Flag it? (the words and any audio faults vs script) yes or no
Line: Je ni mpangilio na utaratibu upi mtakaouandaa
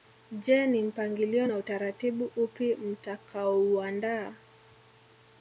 no